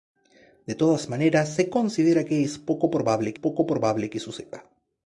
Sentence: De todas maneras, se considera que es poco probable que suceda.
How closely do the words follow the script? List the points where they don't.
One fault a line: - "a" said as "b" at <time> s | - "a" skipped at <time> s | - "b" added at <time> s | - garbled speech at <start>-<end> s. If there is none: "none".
- "poco probable" added at 3.3 s